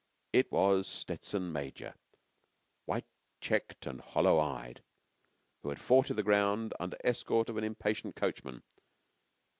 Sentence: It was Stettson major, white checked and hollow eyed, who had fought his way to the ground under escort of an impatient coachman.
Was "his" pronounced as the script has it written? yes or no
no